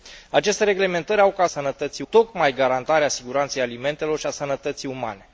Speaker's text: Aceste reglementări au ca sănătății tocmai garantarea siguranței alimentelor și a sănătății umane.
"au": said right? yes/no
yes